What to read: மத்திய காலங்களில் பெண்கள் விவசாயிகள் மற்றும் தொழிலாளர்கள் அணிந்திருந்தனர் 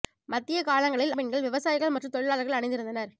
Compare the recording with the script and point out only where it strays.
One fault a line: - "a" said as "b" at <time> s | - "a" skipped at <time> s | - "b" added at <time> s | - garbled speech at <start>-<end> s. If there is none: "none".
none